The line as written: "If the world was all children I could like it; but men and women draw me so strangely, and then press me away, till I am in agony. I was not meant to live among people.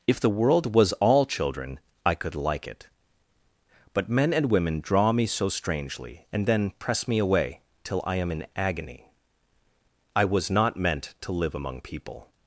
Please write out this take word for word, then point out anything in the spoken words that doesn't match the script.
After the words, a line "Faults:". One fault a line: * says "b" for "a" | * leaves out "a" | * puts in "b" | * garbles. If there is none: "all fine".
"If the world was all children I could like it; but men and women draw me so strangely, and then press me away, till I am in agony. I was not meant to live among people.
Faults:
all fine